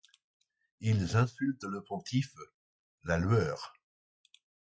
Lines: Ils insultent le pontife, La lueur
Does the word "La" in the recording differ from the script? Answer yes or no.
no